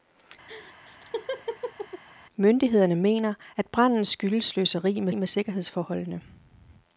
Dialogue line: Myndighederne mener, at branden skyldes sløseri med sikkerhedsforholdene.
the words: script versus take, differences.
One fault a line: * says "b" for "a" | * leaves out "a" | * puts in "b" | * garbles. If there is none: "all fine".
* puts in "med"